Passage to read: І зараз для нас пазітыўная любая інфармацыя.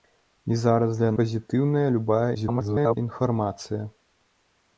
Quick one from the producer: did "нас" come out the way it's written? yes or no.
no